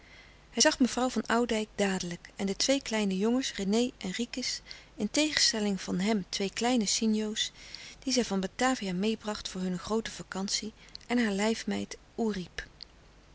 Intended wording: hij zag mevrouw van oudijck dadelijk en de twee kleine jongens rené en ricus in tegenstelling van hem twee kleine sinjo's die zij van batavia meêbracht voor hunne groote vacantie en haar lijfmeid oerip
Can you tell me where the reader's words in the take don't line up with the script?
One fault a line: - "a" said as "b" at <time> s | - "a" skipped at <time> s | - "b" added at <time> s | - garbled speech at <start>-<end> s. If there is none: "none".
none